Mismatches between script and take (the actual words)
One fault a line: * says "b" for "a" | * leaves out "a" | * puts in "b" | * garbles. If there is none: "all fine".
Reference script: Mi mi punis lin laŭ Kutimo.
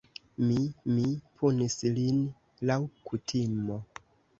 all fine